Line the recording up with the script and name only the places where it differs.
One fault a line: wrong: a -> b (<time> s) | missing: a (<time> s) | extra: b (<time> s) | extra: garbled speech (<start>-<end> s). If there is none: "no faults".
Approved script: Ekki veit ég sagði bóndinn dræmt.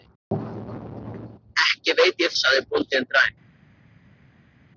no faults